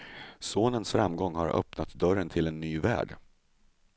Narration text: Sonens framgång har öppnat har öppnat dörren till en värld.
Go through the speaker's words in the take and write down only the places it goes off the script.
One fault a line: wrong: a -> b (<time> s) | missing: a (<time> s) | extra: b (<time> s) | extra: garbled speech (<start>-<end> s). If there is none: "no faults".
missing: har öppnat (1.9 s)
extra: ny (2.6 s)